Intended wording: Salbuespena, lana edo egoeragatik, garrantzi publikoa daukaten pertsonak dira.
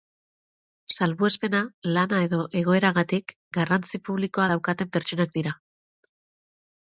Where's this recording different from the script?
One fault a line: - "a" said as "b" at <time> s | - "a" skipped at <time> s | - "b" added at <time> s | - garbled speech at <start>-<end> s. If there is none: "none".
none